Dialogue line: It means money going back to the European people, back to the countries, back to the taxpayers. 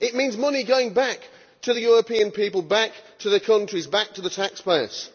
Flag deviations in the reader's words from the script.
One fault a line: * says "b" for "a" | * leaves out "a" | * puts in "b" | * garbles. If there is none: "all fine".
all fine